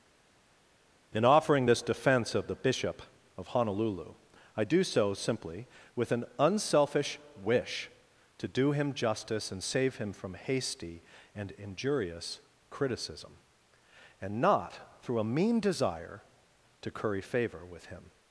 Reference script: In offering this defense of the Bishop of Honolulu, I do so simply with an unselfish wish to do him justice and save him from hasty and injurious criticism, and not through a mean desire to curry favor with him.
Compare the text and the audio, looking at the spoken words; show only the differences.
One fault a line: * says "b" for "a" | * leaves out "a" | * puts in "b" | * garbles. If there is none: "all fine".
all fine